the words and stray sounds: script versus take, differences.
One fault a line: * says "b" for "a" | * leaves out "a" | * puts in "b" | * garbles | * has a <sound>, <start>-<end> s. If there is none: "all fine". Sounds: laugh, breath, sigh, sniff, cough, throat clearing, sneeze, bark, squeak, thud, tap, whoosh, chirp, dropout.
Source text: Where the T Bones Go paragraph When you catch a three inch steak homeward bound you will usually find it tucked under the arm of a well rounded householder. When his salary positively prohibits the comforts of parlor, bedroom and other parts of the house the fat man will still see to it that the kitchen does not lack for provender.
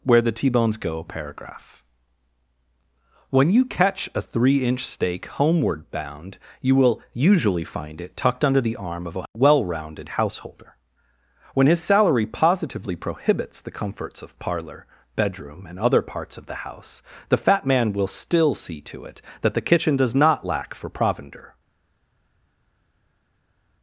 all fine